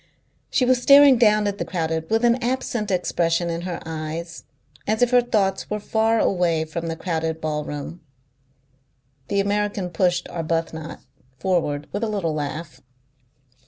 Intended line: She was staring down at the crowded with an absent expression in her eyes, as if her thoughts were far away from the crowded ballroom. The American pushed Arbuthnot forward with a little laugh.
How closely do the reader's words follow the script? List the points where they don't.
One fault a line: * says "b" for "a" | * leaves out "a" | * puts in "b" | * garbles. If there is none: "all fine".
all fine